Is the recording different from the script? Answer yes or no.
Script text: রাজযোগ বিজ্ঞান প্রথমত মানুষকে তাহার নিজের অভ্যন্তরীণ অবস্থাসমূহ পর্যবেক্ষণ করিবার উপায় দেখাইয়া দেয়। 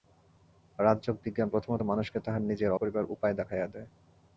yes